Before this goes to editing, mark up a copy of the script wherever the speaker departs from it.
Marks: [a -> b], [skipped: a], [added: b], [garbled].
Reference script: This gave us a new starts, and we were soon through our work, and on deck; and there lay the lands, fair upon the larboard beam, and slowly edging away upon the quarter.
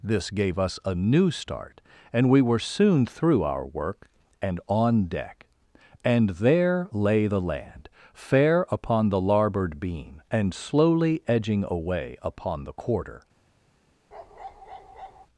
This gave us a new [starts, -> start] and we were soon through our work, and on deck; and there lay the [lands, -> land] fair upon the larboard beam, and slowly edging away upon the quarter.